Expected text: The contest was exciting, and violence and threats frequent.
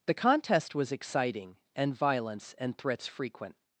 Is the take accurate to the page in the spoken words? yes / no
yes